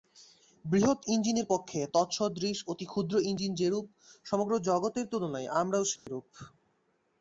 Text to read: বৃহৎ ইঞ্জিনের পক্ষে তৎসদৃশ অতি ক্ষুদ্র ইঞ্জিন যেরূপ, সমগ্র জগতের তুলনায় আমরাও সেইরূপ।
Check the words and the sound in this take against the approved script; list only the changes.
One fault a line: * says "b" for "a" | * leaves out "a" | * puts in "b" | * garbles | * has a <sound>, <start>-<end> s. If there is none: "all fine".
* has a dropout, 6.0-6.1 s